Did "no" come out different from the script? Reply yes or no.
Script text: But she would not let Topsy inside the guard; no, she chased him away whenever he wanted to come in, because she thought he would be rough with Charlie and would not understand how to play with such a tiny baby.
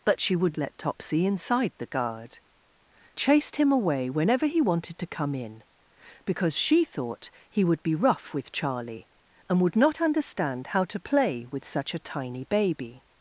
yes